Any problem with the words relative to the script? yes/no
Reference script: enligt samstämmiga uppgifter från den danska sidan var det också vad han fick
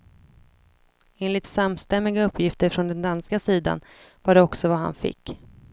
no